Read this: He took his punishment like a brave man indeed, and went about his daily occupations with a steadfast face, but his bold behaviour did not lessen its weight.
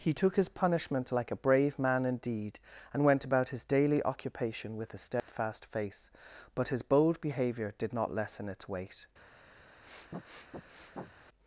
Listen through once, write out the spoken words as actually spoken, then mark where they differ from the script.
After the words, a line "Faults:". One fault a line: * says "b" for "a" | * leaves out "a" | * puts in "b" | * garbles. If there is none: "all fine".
He took his punishment like a brave man indeed, and went about his daily occupation with a steadfast face, but his bold behaviour did not lessen its weight.
Faults:
* says "occupation" for "occupations"